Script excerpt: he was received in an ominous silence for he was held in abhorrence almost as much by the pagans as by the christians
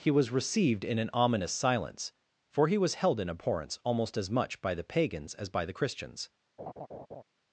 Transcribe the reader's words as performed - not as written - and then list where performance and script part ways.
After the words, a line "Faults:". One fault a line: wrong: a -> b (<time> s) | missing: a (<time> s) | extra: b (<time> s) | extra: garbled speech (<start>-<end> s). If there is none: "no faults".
he was received in an ominous silence for he was held in abhorrence almost as much by the pagans as by the christians
Faults:
no faults